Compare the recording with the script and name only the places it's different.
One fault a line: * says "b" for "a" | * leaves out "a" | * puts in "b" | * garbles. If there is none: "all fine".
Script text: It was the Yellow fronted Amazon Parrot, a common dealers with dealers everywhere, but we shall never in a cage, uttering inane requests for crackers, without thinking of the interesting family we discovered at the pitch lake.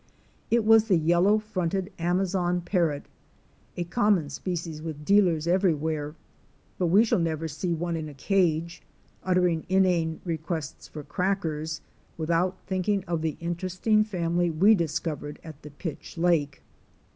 * says "species" for "dealers"
* puts in "see one"